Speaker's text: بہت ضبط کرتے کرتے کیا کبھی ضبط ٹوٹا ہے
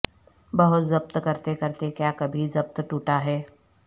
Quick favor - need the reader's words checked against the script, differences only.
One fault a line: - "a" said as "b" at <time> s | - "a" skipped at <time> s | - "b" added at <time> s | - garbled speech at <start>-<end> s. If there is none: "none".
none